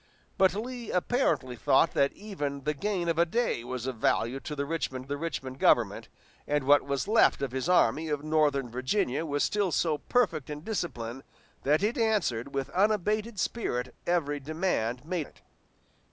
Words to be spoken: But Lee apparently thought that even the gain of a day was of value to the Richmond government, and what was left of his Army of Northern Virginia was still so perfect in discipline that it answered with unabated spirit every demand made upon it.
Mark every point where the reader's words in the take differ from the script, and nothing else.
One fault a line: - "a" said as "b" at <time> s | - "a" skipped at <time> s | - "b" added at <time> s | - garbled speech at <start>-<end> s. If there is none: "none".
- "the Richmond" added at 5.1 s
- "upon" skipped at 15.3 s